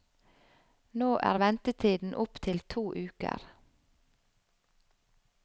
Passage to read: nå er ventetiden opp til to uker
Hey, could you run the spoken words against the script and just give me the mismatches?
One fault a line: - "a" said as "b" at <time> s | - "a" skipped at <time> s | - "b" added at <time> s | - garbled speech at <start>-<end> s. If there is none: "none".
none